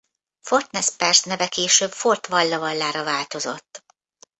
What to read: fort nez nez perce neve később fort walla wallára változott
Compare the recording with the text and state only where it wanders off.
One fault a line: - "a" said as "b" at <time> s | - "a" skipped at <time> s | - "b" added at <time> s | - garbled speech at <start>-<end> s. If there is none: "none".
- "nez" skipped at 0.9 s